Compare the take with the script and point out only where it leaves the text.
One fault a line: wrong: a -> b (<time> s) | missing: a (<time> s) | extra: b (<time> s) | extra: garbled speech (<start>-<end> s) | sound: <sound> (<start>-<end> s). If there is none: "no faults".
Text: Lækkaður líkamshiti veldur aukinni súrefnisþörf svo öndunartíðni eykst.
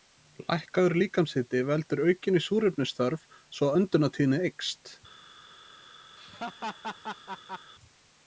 sound: laugh (6.2-7.7 s)